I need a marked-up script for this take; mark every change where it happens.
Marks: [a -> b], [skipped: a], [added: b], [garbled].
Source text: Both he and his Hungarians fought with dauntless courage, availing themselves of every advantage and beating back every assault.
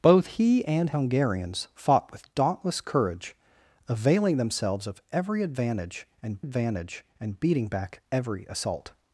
Both he and [skipped: his] Hungarians fought with dauntless courage, availing themselves of every advantage and [added: advantage and] beating back every assault.